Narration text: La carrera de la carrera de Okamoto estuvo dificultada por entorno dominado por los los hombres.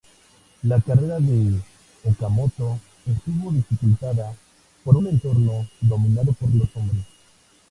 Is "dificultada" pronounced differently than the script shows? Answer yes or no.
no